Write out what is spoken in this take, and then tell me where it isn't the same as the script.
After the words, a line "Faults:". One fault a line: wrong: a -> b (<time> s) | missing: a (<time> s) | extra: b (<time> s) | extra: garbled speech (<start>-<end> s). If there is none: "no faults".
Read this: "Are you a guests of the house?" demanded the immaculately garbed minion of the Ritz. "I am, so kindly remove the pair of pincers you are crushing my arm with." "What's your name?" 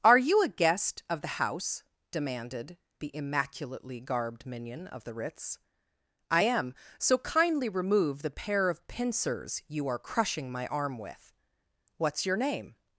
"Are you a guest of the house?" demanded the immaculately garbed minion of the Ritz. "I am, so kindly remove the pair of pincers you are crushing my arm with." "What's your name?"
Faults:
wrong: guests -> guest (0.5 s)